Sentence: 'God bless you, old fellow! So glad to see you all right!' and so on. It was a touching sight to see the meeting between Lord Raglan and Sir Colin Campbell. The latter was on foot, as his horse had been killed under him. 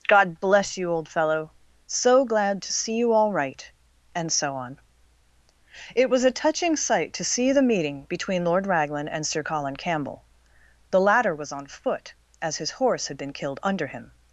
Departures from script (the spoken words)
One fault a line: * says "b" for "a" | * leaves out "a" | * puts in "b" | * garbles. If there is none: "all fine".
all fine